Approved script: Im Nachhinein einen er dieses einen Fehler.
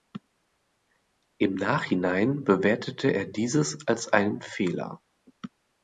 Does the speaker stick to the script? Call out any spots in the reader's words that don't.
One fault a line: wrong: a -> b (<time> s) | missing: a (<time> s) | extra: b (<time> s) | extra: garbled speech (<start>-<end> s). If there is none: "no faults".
wrong: einen -> bewertete (2.4 s)
extra: als (3.8 s)